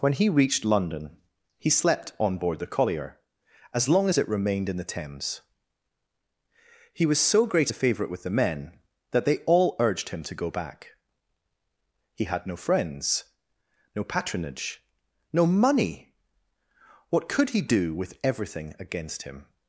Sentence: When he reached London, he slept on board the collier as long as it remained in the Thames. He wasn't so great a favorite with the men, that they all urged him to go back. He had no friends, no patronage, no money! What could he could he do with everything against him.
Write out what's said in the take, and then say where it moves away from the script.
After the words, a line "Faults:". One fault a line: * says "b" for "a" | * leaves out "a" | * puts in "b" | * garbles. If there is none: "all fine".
When he reached London, he slept on board the collier as long as it remained in the Thames. He was so great a favorite with the men, that they all urged him to go back. He had no friends, no patronage, no money! What could he do with everything against him.
Faults:
* says "was" for "wasn't"
* leaves out "could he"